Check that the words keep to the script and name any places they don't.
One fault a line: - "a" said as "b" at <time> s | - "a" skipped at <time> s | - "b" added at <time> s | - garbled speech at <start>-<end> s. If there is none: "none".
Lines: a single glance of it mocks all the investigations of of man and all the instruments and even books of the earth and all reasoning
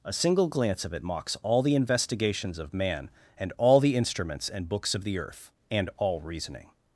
- "of" skipped at 2.7 s
- "even" skipped at 4.7 s